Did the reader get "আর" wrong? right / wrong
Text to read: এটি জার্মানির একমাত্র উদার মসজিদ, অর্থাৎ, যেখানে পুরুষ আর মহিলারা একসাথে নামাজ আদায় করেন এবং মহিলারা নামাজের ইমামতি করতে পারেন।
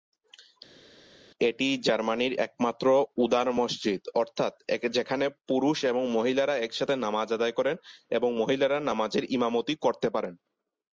wrong